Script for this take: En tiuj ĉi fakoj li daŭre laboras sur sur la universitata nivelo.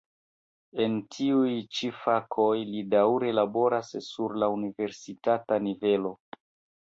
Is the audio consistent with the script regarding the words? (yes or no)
no